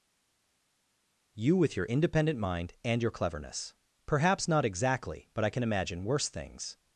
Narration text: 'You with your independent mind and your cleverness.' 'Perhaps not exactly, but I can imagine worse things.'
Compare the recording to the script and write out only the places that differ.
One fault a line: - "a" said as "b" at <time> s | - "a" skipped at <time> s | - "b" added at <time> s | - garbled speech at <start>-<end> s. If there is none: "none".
none